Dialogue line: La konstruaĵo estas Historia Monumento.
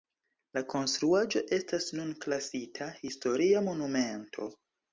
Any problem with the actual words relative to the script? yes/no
yes